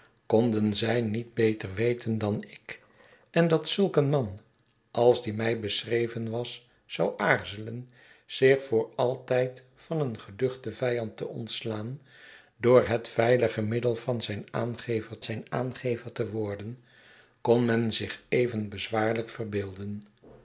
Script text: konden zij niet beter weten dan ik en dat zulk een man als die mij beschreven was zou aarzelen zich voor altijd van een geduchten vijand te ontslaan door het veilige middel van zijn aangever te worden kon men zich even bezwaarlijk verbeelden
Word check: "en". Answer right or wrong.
right